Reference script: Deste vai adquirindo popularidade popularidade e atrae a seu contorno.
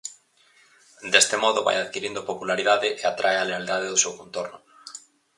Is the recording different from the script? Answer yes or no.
yes